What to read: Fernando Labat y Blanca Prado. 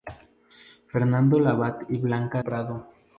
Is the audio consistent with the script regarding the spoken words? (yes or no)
yes